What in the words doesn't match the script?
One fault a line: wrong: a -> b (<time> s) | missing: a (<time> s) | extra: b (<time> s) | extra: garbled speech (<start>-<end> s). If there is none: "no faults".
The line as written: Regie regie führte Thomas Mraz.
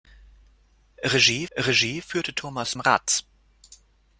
no faults